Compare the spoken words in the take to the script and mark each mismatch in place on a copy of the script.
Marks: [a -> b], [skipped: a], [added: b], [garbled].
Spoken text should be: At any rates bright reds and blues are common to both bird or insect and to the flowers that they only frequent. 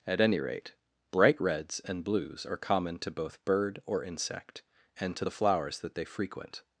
At any [rates -> rate] bright reds and blues are common to both bird or insect and to the flowers that they [skipped: only] frequent.